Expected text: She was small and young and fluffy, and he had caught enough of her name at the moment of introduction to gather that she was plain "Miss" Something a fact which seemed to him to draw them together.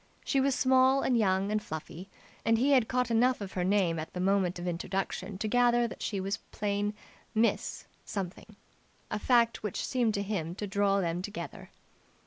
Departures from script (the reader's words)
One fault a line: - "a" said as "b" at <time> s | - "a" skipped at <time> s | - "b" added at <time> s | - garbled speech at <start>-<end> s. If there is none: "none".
none